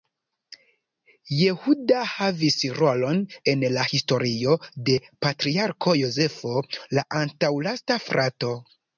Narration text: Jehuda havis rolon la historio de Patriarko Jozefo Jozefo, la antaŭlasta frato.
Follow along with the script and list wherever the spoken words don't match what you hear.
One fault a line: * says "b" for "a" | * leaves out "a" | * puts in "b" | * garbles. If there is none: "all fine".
* puts in "en"
* leaves out "Jozefo"